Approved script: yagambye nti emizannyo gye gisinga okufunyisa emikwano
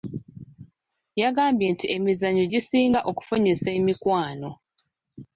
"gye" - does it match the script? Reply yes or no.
no